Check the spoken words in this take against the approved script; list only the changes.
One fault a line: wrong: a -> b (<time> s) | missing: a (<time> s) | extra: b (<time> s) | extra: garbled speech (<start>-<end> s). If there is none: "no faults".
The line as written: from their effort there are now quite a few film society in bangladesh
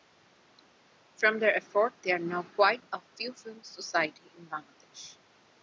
no faults